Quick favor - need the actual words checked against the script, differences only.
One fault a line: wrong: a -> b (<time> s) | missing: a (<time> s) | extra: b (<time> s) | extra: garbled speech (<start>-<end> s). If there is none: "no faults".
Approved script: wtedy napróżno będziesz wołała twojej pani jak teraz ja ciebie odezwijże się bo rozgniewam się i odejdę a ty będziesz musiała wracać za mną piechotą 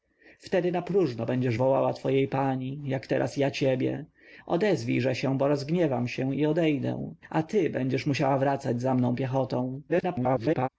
extra: garbled speech (9.9-10.7 s)